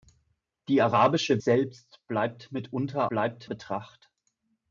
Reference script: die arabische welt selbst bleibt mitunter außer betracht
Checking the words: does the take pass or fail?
fail